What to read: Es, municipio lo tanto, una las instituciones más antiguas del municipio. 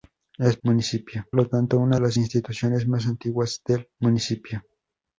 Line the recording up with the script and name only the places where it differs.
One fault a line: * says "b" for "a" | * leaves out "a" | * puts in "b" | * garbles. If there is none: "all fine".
all fine